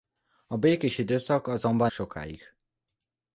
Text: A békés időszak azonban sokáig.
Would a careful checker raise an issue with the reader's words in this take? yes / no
no